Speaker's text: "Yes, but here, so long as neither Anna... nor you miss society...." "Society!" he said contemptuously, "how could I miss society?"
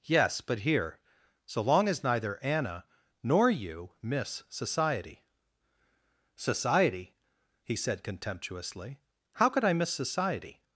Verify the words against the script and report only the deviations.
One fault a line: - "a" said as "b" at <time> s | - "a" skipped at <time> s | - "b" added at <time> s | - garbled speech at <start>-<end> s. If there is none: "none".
none